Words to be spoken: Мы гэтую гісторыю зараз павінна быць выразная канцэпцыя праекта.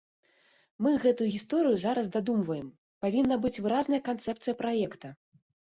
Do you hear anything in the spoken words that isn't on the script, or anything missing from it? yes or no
yes